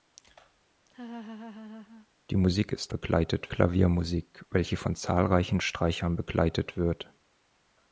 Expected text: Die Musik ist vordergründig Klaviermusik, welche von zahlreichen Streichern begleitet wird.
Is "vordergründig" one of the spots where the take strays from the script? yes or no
yes